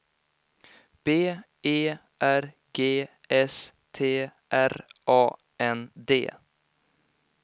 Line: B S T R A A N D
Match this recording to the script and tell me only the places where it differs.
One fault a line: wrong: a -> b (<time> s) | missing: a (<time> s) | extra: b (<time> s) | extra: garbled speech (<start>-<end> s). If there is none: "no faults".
extra: E R G (1.6 s)
missing: A (5.3 s)